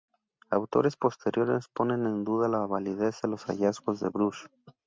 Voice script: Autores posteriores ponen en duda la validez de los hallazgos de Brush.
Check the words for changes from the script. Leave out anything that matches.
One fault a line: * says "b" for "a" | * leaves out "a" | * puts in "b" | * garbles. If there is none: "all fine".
all fine